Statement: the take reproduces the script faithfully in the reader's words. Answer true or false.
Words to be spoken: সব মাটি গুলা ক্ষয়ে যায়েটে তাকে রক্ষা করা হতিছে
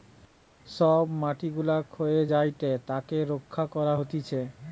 true